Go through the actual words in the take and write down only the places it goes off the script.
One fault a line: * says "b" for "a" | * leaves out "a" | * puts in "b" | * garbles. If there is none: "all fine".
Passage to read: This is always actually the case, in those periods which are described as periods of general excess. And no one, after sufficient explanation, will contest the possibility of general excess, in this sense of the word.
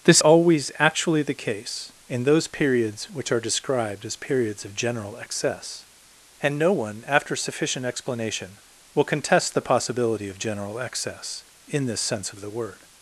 * leaves out "is"